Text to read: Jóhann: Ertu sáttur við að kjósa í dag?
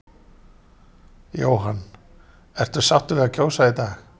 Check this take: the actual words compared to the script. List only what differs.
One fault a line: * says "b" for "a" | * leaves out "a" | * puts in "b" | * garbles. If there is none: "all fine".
all fine